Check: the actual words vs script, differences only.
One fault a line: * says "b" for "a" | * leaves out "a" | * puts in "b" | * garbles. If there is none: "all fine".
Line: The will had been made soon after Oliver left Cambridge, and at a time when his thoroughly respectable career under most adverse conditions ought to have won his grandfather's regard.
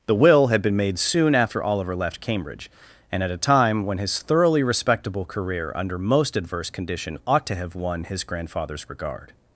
* says "condition" for "conditions"